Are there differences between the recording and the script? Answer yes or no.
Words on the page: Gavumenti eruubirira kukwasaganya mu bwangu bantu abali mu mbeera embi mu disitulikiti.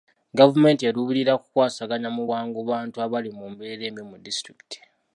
no